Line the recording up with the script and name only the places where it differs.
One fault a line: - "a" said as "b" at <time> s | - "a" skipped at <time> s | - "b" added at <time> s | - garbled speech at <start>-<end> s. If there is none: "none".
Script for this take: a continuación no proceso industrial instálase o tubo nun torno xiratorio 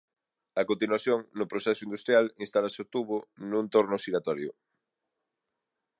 none